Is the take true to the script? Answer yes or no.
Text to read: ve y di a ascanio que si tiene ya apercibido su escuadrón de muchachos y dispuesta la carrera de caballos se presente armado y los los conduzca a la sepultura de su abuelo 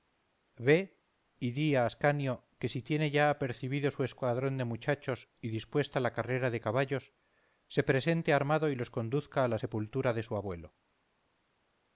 no